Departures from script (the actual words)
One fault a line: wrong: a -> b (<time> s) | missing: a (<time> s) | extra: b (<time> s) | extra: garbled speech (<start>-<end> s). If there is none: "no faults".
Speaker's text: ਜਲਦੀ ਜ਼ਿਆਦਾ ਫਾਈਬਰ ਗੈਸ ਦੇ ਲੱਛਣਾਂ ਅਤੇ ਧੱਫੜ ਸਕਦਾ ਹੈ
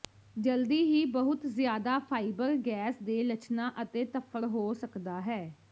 extra: ਹੀ ਬਹੁਤ (0.8 s)
extra: ਹੋ (4.5 s)